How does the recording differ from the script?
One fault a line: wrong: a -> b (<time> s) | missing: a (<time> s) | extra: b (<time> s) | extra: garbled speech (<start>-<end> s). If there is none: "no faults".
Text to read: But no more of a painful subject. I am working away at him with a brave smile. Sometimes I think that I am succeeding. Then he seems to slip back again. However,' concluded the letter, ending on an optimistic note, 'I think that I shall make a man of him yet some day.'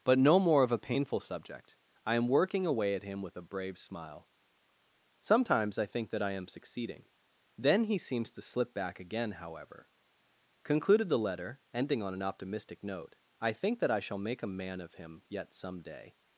no faults